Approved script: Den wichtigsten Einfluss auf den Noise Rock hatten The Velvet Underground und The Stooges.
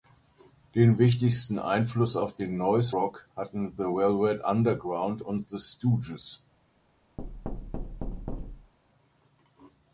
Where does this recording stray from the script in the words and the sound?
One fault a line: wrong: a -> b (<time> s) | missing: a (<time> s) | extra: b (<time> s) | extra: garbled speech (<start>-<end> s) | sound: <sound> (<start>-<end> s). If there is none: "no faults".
sound: thud (7.2-8.7 s)